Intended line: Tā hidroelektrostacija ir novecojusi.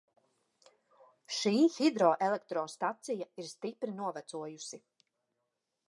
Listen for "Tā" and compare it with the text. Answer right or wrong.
wrong